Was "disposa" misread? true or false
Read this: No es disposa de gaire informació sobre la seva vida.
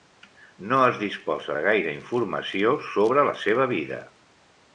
false